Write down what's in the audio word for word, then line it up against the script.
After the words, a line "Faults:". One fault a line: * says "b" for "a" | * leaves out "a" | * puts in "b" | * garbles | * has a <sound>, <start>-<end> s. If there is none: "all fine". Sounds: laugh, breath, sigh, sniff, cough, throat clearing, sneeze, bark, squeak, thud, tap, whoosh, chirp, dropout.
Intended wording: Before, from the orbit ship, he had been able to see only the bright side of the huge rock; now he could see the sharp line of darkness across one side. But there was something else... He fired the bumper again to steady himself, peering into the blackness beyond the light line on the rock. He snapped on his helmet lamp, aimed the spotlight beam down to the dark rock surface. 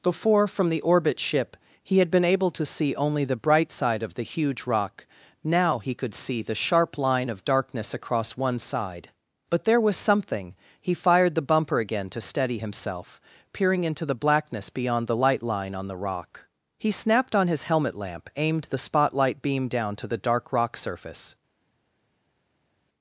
Before, from the orbit ship, he had been able to see only the bright side of the huge rock; now he could see the sharp line of darkness across one side. But there was something... He fired the bumper again to steady himself, peering into the blackness beyond the light line on the rock. He snapped on his helmet lamp, aimed the spotlight beam down to the dark rock surface.
Faults:
* leaves out "else"